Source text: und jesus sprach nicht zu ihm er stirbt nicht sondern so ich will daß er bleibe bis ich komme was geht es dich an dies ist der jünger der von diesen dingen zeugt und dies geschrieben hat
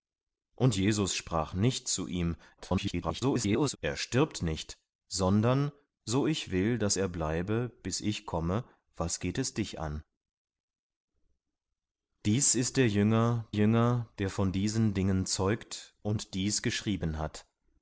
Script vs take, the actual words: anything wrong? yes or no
yes